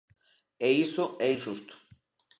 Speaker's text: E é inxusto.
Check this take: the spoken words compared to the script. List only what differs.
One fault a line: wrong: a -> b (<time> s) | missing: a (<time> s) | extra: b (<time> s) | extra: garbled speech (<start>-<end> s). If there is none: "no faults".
extra: iso (0.8 s)